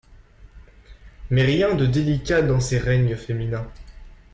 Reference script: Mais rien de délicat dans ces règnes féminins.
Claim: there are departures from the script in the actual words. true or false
false